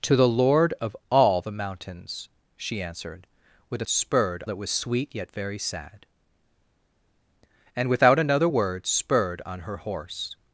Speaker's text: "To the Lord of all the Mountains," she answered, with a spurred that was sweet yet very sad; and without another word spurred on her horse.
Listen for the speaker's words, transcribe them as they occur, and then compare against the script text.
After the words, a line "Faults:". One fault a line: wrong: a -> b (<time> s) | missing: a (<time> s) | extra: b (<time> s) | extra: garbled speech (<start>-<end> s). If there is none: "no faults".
"To the Lord of all the Mountains," she answered, with a spurred that was sweet yet very sad; and without another word spurred on her horse.
Faults:
no faults